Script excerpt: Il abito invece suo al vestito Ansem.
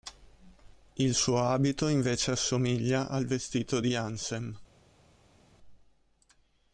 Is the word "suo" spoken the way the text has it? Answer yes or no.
no